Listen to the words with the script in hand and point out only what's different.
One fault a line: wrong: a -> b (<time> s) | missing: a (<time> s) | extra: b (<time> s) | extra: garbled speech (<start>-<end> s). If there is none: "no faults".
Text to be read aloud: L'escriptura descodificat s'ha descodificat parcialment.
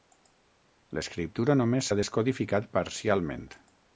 wrong: descodificat -> només (1.6 s)